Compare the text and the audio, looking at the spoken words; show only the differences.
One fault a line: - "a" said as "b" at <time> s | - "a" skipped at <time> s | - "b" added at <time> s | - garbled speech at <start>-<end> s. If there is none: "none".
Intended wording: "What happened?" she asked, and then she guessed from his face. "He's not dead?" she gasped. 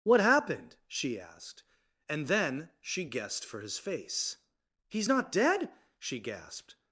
- "from" said as "for" at 3.4 s